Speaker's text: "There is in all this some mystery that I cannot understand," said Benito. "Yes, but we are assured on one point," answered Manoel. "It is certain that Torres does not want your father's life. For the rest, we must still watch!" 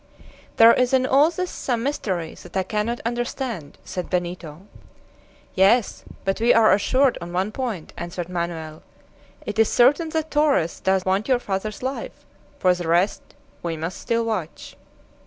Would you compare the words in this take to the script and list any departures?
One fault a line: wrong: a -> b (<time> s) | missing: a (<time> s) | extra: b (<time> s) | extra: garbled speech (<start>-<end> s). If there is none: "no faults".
missing: not (11.1 s)